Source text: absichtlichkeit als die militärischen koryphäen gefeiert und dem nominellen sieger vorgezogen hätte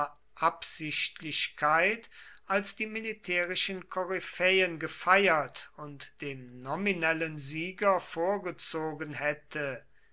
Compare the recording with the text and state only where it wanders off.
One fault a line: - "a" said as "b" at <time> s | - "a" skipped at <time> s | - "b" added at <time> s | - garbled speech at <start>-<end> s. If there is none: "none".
none